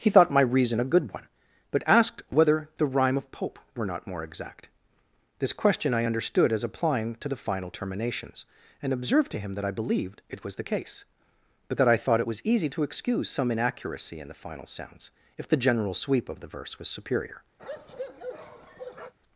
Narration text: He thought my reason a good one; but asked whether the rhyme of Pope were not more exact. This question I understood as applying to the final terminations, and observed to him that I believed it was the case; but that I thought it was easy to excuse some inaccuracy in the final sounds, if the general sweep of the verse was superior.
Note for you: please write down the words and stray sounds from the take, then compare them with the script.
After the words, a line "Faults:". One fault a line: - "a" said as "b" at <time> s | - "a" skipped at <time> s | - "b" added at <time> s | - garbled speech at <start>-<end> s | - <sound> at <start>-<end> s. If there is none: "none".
He thought my reason a good one; but asked whether the rhyme of Pope were not more exact. This question I understood as applying to the final terminations, and observed to him that I believed it was the case; but that I thought it was easy to excuse some inaccuracy in the final sounds, if the general sweep of the verse was superior.
Faults:
- bark at 17.6-19.1 s